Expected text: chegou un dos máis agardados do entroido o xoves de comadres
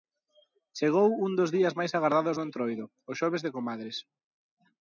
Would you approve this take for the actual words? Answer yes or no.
no